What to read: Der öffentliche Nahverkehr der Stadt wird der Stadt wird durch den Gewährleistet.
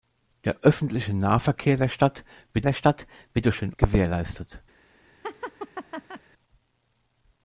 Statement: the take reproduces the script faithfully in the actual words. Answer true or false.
true